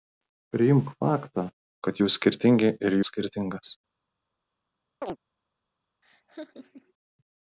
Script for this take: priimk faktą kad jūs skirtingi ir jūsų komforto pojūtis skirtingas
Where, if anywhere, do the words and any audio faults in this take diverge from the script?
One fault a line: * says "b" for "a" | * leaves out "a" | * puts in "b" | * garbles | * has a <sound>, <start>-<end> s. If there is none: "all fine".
* leaves out "jūsų komforto pojūtis"
* has a chirp, 5.0-5.2 s
* has a laugh, 6.0-6.9 s